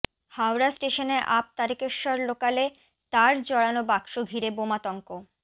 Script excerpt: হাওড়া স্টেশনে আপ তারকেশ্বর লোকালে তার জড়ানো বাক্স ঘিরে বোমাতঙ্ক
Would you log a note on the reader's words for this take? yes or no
no